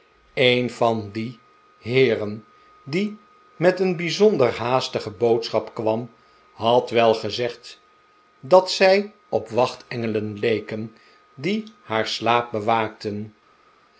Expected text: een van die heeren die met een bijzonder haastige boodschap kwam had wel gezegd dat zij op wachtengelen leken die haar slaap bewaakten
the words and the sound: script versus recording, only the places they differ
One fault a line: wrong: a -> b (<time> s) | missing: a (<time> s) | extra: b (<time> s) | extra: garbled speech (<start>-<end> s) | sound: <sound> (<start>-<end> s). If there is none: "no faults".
no faults